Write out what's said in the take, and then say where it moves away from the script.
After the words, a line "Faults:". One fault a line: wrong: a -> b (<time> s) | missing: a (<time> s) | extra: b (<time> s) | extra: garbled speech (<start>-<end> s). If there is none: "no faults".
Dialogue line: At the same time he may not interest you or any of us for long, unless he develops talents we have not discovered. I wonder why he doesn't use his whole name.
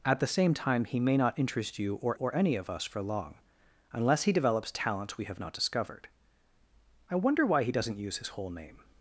At the same time he may not interest you or or any of us for long, unless he develops talents we have not discovered. I wonder why he doesn't use his whole name.
Faults:
extra: or (2.1 s)